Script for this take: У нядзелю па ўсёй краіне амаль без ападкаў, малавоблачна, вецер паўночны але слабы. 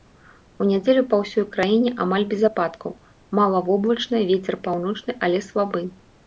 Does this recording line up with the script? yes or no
yes